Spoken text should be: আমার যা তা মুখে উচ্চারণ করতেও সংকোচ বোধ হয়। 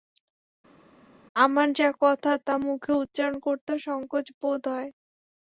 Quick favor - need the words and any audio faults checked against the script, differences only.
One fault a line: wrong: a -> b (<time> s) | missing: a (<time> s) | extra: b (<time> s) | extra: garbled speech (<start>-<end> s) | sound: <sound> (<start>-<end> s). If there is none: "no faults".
extra: কথা (2.0 s)